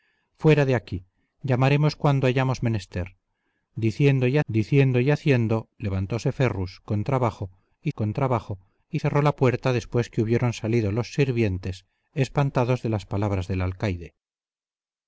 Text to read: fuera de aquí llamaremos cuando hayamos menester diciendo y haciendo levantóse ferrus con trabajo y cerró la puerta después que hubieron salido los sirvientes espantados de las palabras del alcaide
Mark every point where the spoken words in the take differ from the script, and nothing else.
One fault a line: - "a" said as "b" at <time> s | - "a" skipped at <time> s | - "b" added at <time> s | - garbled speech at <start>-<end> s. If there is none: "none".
- "diciendo y" added at 4.5 s
- "con trabajo y" added at 7.9 s